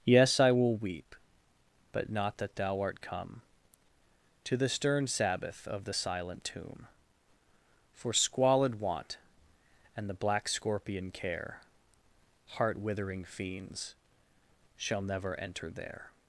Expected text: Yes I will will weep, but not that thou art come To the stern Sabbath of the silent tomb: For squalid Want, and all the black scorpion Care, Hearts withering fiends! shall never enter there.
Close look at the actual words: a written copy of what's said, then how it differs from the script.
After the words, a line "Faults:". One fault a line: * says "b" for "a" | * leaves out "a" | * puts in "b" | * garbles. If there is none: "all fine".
Yes I will weep, but not that thou art come To the stern Sabbath of the silent tomb: For squalid Want, and the black scorpion Care, Heart withering fiends! shall never enter there.
Faults:
* leaves out "will"
* leaves out "all"
* says "Heart" for "Hearts"